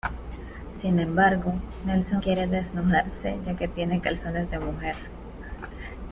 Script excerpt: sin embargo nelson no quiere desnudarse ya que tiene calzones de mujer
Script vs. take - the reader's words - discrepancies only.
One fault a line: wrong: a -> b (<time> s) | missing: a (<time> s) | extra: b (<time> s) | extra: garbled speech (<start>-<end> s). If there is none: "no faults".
missing: no (2.2 s)